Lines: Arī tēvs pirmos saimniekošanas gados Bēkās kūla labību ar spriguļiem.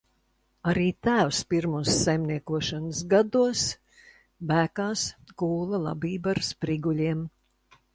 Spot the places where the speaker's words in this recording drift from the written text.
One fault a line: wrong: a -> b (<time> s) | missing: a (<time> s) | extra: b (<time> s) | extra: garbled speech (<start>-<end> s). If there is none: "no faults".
no faults